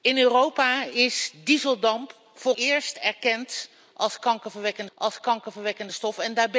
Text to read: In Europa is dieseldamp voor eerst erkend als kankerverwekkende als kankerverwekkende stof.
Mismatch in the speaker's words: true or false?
false